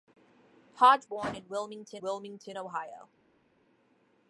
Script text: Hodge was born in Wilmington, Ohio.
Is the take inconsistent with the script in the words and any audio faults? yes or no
yes